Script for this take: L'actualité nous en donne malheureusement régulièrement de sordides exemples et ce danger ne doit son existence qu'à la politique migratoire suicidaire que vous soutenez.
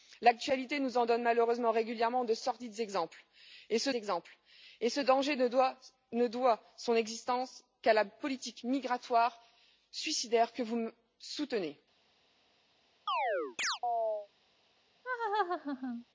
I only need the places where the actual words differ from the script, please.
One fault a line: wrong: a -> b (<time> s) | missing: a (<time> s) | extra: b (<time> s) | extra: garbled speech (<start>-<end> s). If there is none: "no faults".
extra: exemples et ce (3.9 s)